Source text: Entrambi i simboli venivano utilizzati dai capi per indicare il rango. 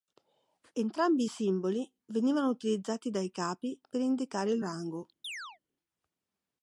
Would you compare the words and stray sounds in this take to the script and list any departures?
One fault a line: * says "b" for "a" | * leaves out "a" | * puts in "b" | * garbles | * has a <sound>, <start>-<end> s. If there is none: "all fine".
* has a chirp, 5.2-5.6 s